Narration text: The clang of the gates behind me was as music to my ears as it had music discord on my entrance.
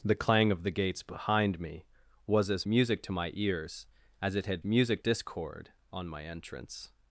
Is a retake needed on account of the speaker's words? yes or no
no